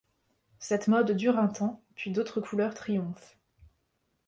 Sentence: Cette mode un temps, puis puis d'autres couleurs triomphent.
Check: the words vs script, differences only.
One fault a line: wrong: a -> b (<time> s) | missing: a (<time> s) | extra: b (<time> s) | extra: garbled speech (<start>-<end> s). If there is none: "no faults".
extra: dure (1.1 s)
missing: puis (2.1 s)